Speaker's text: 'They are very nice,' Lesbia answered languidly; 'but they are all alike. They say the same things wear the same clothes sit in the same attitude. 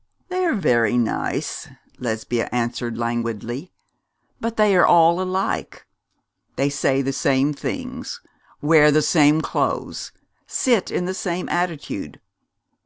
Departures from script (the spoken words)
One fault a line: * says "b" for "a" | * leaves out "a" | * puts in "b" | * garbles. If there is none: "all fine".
all fine